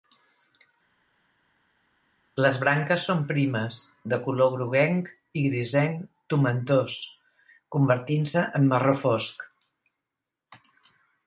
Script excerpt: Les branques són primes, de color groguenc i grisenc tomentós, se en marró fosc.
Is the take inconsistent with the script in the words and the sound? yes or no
yes